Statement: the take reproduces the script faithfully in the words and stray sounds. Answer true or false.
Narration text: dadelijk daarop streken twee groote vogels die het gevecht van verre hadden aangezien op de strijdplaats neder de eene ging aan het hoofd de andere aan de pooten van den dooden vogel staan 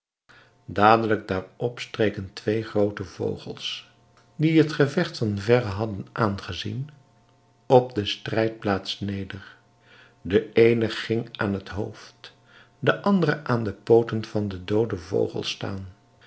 true